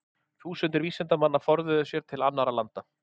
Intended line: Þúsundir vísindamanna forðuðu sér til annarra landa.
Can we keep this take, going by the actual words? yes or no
yes